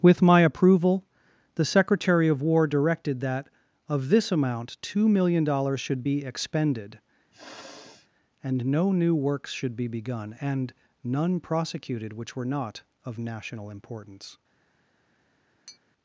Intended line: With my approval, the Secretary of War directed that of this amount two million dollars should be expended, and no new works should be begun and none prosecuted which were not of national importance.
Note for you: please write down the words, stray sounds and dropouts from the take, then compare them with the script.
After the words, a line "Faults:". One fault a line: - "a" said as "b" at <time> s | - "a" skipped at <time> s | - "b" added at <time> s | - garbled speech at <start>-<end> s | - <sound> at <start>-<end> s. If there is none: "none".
With my approval, the Secretary of War directed that of this amount two million dollars should be expended, and no new works should be begun and none prosecuted which were not of national importance.
Faults:
- sniff at 7.3-8.1 s
- tap at 15.7-15.8 s